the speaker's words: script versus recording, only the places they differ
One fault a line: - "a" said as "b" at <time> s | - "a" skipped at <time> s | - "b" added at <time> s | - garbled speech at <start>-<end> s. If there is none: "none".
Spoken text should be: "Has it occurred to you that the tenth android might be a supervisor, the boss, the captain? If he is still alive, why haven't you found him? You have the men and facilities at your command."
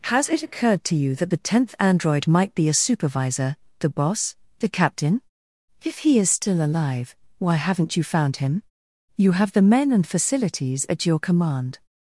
none